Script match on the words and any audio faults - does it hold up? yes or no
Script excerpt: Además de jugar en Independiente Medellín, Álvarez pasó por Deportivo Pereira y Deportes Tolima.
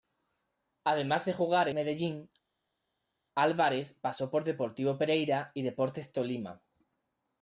no